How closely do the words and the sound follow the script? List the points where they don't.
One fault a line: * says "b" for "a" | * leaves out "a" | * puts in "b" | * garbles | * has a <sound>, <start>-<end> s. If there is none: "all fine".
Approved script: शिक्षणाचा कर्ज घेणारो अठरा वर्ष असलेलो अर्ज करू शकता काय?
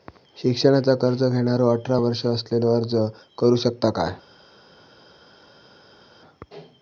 all fine